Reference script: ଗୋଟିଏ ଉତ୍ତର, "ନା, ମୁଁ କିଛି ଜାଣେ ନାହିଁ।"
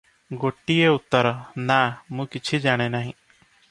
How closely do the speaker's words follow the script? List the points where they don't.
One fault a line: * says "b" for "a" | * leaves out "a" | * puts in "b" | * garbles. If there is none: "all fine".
all fine